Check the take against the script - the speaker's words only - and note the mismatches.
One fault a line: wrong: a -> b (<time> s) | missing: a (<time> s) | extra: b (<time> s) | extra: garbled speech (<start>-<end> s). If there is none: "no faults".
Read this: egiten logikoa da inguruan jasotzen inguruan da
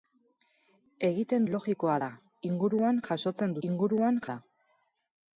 no faults